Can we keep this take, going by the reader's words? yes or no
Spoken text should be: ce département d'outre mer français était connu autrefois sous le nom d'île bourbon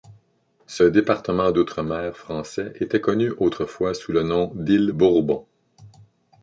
yes